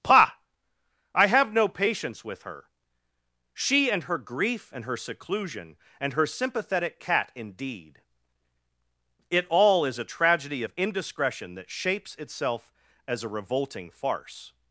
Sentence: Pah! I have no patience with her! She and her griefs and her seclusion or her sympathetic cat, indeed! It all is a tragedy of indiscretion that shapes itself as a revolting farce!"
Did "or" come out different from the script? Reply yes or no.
yes